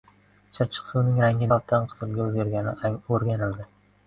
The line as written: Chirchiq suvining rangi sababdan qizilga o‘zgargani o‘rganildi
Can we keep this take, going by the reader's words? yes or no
yes